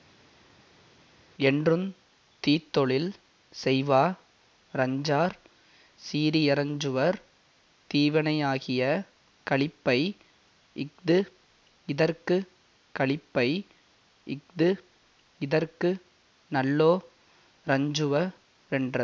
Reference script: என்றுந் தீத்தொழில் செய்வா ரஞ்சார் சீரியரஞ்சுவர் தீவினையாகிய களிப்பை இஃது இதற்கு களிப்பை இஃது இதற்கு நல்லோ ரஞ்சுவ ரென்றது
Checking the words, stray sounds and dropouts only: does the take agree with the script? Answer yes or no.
yes